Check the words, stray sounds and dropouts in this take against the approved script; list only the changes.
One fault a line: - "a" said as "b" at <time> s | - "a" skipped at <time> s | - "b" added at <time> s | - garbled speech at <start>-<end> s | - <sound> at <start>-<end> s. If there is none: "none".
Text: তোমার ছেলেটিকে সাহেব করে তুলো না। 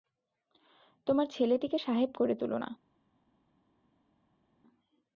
none